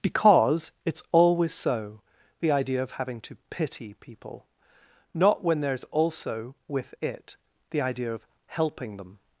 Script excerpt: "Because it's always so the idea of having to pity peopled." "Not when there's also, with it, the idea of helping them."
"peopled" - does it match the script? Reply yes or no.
no